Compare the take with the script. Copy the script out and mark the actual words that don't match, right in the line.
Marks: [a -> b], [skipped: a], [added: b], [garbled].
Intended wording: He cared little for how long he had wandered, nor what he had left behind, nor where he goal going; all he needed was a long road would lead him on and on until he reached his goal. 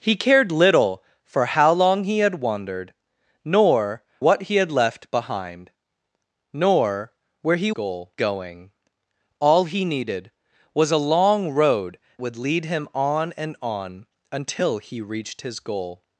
He cared little for how long he had wandered, nor what he had left behind, nor where he goal going; all he needed was a long road would lead him on and on until he reached his goal.